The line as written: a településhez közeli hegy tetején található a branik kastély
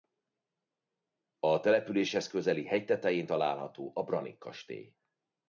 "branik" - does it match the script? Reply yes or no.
yes